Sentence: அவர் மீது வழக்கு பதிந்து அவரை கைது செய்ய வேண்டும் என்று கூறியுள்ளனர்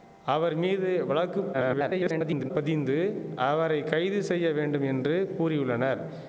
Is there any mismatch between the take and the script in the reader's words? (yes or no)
yes